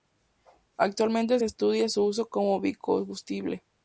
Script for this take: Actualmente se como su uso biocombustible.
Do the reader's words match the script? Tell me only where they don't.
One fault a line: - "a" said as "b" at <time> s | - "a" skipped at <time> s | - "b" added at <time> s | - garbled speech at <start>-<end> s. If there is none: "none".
- "como" said as "estudia" at 1.4 s
- "como" added at 2.3 s